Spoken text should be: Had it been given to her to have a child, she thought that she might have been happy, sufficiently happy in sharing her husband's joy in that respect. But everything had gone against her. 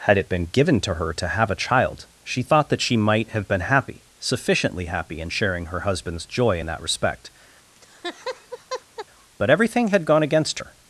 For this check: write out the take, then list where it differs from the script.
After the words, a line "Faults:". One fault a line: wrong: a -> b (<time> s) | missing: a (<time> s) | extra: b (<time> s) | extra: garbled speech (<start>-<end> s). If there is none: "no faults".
Had it been given to her to have a child, she thought that she might have been happy, sufficiently happy in sharing her husband's joy in that respect. But everything had gone against her.
Faults:
no faults